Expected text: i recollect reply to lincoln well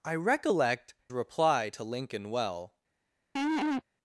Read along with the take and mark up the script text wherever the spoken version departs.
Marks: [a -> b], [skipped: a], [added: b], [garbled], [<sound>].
i recollect reply to lincoln well [laugh]